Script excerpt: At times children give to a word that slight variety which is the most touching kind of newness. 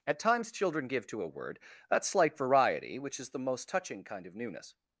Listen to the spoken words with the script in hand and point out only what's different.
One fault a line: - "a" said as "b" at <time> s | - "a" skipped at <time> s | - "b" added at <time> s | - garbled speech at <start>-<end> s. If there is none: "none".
none